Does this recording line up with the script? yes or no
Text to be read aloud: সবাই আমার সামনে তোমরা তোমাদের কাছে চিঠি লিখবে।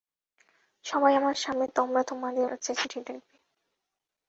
yes